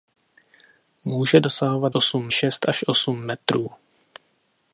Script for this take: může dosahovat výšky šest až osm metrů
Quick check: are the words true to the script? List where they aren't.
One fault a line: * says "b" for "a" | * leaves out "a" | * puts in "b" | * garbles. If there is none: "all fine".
* says "osm" for "výšky"